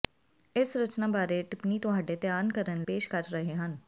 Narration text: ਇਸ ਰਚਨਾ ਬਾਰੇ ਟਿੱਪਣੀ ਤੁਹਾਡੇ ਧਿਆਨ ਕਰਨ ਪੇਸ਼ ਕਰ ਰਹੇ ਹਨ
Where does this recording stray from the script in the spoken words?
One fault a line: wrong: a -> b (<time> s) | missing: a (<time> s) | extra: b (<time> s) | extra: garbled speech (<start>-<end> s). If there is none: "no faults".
no faults